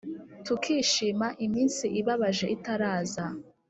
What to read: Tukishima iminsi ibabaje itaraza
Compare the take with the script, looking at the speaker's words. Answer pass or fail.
pass